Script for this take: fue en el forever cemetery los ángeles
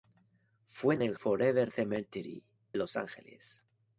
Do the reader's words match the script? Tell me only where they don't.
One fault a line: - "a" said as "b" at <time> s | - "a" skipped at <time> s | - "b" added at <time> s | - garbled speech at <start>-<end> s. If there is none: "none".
none